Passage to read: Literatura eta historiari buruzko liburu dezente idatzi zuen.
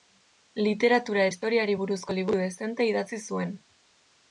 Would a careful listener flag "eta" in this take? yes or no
yes